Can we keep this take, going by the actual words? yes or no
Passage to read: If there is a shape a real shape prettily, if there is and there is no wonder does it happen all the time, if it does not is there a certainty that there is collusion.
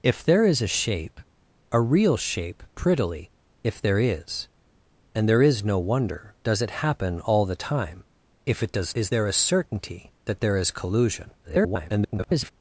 no